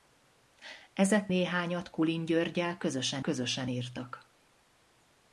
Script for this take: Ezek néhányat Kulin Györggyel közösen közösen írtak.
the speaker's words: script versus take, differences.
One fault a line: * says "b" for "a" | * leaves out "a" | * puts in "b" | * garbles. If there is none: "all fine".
all fine